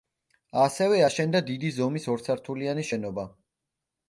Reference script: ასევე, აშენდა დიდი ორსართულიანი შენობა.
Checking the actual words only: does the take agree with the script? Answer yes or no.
no